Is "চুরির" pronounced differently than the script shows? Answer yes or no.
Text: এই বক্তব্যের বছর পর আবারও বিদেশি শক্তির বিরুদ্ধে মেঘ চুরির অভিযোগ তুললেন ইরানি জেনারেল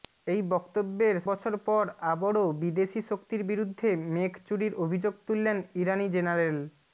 no